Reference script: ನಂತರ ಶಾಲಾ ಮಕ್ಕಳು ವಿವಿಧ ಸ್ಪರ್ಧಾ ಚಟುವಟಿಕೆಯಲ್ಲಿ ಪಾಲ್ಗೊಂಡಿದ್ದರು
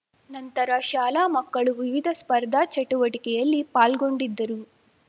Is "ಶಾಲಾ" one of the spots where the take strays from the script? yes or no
no